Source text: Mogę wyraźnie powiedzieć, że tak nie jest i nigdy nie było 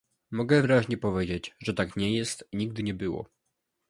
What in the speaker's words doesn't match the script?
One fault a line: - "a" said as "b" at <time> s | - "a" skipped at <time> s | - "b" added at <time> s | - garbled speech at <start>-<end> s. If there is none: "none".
none